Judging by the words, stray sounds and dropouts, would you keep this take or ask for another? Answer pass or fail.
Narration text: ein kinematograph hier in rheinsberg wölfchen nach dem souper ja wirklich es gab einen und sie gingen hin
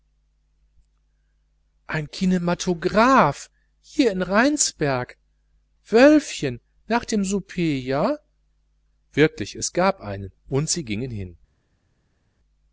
pass